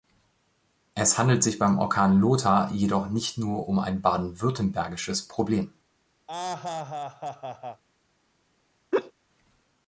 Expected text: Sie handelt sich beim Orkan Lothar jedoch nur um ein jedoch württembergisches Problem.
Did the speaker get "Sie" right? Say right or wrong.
wrong